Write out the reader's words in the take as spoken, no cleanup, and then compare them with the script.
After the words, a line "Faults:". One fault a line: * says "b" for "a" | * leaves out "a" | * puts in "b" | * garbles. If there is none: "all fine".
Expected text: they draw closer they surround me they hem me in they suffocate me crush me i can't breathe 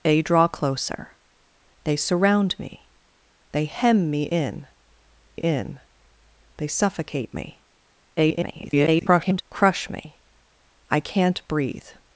they draw closer they surround me they hem me in in they suffocate me [garbled] crush me i can't breathe
Faults:
* puts in "in"
* garbles